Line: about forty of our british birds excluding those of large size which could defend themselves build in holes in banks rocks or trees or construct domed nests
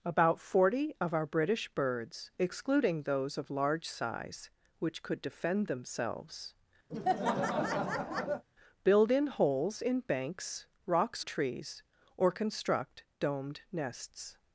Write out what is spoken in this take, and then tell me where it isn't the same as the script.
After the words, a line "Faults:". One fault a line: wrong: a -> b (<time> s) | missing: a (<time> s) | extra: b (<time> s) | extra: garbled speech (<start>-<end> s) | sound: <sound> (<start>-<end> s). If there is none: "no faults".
about forty of our british birds excluding those of large size which could defend themselves build in holes in banks rocks trees or construct domed nests
Faults:
sound: laugh (6.9-8.4 s)
missing: or (11.2 s)